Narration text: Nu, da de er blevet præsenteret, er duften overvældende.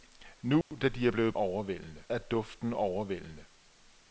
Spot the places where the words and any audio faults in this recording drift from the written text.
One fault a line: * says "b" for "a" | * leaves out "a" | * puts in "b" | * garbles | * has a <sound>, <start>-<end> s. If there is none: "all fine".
* has a dropout, 0.6-0.7 s
* says "overvældende" for "præsenteret"